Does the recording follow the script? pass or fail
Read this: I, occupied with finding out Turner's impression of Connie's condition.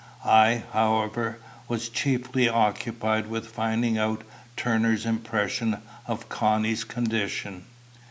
fail